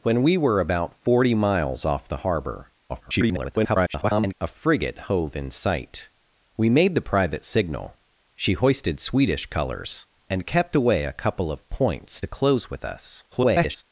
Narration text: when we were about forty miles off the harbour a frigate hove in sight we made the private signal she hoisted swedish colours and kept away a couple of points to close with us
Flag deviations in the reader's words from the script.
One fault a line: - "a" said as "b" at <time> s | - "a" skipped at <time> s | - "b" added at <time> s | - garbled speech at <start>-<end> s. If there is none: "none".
- garbled speech at 2.9-4.3 s
- garbled speech at 13.3-13.8 s